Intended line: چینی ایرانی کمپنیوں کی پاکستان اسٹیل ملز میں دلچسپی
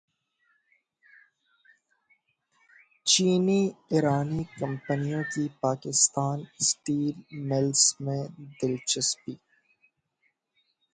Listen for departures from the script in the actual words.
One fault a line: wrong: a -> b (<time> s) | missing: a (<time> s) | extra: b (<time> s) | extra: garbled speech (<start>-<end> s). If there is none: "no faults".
no faults